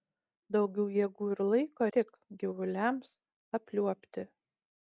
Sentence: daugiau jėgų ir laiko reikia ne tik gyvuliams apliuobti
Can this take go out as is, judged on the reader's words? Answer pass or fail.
fail